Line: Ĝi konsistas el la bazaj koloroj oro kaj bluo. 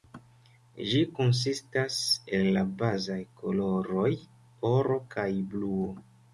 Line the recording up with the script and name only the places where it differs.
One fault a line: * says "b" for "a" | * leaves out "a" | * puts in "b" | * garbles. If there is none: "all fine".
all fine